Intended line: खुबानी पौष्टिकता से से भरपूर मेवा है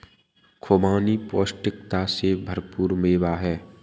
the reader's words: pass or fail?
fail